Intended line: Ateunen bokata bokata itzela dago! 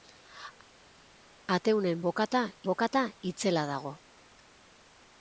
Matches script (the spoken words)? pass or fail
pass